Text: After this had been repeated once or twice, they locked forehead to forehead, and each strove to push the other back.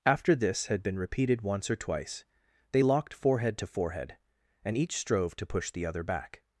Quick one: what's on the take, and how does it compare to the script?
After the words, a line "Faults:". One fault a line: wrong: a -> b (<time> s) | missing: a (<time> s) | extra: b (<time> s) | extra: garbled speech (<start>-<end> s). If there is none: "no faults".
After this had been repeated once or twice, they locked forehead to forehead, and each strove to push the other back.
Faults:
no faults